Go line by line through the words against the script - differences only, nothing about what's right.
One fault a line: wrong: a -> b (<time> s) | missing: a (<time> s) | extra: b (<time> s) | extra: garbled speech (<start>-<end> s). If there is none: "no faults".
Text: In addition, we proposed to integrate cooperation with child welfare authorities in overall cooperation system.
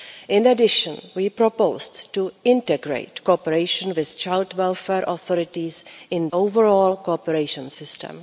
no faults